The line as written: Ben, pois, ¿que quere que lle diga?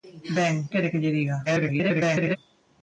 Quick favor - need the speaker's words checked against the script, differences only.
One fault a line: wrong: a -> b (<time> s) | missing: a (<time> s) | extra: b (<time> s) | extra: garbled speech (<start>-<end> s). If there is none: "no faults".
missing: pois que (0.6 s)
extra: garbled speech (1.5-2.4 s)